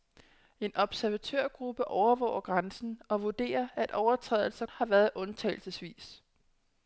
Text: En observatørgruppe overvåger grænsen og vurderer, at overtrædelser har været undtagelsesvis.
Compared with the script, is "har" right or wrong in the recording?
right